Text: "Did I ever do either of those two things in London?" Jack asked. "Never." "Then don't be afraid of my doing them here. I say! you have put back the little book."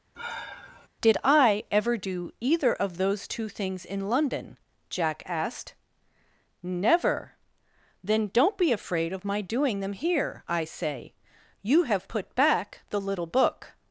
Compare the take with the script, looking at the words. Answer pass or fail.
pass